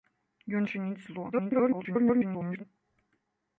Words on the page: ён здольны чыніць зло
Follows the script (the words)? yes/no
no